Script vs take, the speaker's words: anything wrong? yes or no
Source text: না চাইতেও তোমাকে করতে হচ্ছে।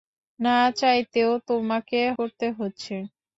no